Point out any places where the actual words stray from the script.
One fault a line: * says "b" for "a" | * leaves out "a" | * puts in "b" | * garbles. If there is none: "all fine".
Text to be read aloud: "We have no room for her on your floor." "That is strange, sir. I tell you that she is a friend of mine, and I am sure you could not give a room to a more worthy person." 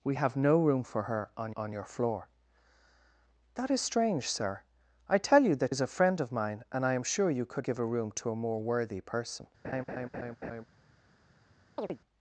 * puts in "on"
* leaves out "she"
* leaves out "not"